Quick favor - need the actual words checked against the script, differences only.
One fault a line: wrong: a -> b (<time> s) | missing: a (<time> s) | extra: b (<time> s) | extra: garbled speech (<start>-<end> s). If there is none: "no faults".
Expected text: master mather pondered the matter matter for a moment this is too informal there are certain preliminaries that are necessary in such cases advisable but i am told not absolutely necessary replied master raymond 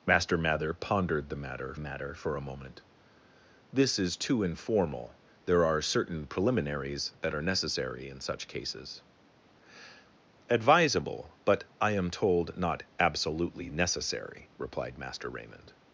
no faults